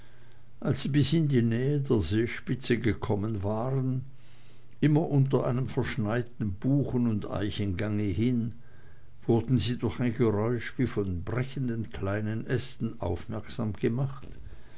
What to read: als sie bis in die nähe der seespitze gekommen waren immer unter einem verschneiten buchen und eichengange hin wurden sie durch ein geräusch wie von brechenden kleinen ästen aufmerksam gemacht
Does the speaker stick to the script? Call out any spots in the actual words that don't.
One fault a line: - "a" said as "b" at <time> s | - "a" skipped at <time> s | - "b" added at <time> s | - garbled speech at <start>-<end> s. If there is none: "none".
none